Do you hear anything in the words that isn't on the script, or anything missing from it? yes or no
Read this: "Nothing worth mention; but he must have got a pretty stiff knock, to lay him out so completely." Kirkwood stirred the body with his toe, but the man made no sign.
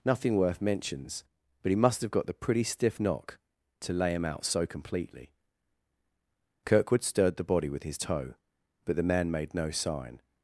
yes